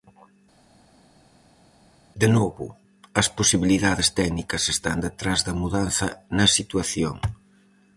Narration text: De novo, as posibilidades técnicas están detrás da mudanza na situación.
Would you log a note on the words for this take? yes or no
no